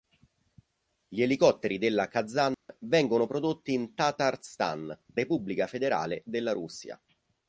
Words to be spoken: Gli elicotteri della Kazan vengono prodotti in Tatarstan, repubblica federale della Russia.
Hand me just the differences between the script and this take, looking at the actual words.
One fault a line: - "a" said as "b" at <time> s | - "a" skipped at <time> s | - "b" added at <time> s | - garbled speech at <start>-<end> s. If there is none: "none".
none